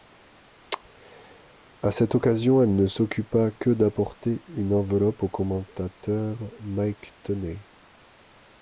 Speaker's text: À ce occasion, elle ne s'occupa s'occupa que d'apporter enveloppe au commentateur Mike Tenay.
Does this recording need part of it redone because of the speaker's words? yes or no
yes